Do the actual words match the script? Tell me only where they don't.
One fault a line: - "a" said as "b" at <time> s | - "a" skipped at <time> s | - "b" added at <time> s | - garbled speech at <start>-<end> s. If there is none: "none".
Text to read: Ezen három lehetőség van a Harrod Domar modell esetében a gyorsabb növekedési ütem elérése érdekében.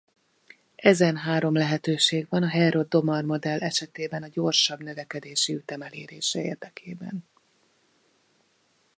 none